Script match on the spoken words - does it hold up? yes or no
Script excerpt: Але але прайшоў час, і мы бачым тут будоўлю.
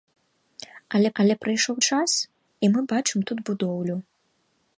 yes